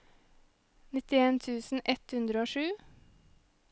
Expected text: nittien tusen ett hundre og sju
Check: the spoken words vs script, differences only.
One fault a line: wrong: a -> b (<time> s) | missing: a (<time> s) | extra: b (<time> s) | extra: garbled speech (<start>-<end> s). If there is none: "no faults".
no faults